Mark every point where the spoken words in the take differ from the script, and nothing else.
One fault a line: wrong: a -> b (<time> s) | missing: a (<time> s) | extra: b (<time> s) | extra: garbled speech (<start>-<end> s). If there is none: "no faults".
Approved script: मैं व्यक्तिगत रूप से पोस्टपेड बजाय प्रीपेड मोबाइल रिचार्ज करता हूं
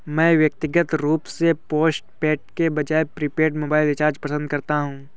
extra: के (2.6 s)
extra: पसंद (4.2 s)